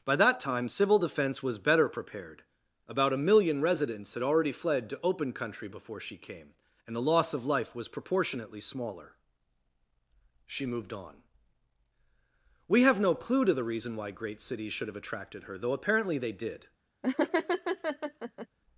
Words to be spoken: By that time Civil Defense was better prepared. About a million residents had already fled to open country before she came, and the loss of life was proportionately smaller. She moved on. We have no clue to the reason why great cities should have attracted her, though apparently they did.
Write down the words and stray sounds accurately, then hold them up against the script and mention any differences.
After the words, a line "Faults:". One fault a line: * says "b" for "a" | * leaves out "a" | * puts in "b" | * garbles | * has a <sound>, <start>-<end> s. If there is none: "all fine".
By that time Civil Defense was better prepared. About a million residents had already fled to open country before she came, and the loss of life was proportionately smaller. She moved on. We have no clue to the reason why great cities should have attracted her, though apparently they did.
Faults:
* has a laugh, 17.0-18.5 s